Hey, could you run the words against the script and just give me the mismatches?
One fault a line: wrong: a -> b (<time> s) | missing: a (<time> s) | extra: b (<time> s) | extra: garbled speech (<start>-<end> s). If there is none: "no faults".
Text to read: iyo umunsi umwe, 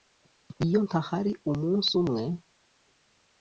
extra: ntahari (0.8 s)